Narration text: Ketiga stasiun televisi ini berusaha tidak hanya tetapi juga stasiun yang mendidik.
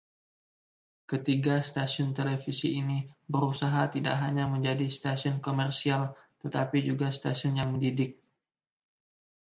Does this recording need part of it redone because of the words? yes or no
yes